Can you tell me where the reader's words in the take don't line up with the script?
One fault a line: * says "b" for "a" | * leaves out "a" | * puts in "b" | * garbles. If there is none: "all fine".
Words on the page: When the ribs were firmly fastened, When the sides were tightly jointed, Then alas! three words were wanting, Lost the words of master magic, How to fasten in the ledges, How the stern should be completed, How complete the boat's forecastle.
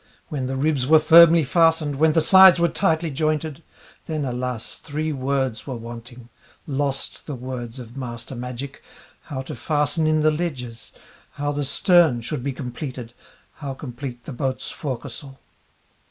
all fine